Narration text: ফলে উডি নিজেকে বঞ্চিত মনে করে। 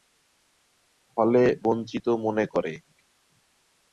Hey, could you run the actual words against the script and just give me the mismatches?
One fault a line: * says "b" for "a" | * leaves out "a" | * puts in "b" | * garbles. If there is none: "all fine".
* leaves out "উডি নিজেকে"